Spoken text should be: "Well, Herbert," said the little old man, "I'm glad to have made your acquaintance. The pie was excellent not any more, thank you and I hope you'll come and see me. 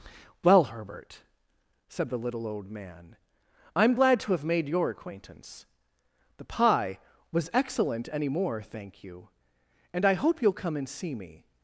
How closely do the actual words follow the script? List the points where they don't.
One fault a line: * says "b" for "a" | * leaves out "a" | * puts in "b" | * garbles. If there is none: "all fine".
* leaves out "not"